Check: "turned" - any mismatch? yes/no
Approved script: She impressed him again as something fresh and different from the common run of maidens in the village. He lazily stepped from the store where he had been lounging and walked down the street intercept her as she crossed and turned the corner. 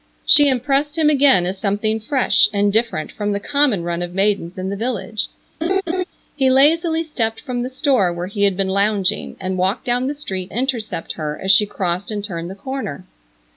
no